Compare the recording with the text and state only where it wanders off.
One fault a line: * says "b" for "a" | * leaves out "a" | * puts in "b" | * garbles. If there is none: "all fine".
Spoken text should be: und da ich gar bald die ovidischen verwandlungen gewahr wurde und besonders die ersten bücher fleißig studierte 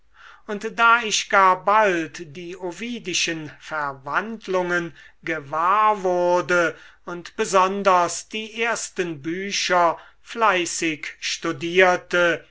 all fine